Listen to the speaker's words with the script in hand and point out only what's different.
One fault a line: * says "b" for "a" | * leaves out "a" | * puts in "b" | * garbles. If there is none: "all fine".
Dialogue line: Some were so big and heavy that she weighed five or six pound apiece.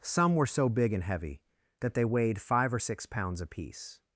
* says "they" for "she"
* says "pounds" for "pound"